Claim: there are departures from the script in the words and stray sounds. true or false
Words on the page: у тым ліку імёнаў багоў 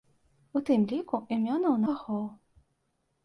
false